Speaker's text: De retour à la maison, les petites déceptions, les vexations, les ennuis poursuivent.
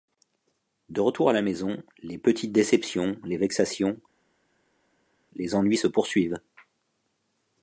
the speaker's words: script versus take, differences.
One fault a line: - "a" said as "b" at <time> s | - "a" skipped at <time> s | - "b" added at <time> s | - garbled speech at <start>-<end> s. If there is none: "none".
- "se" added at 5.7 s